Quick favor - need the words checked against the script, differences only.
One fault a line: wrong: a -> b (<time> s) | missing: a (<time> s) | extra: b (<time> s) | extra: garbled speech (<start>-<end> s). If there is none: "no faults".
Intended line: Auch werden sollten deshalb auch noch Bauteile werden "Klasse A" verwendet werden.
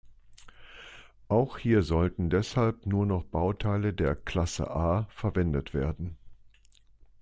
wrong: werden -> hier (1.6 s)
wrong: auch -> nur (2.9 s)
wrong: werden -> der (3.9 s)